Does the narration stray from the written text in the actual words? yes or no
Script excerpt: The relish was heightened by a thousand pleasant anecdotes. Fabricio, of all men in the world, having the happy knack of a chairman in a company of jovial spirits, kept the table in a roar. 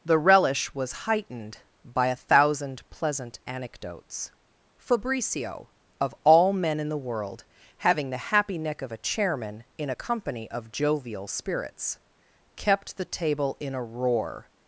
yes